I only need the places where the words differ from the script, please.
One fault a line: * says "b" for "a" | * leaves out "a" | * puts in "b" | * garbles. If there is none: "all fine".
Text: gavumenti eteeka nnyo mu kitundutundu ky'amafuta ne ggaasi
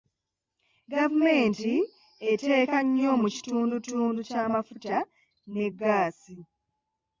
all fine